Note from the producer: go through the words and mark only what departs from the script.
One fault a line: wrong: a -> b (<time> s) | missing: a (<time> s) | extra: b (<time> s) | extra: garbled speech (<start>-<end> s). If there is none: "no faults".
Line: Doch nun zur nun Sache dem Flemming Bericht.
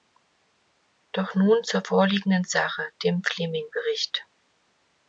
wrong: nun -> vorliegenden (1.8 s)